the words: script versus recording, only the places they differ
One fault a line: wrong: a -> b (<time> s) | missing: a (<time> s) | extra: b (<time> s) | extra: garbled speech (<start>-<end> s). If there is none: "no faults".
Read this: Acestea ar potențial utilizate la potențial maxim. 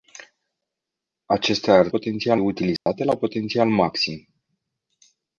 no faults